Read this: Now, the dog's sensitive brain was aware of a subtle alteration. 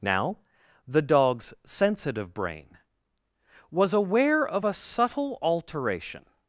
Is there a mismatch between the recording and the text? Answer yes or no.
no